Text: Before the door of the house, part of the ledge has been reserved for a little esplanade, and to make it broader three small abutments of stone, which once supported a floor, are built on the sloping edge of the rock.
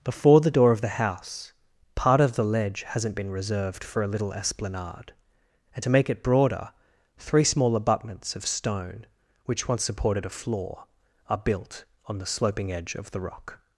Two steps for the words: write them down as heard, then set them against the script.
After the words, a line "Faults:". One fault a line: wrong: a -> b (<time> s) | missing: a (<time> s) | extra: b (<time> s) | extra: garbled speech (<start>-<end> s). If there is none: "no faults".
Before the door of the house, part of the ledge hasn't been reserved for a little esplanade, and to make it broader three small abutments of stone, which once supported a floor, are built on the sloping edge of the rock.
Faults:
wrong: has -> hasn't (2.8 s)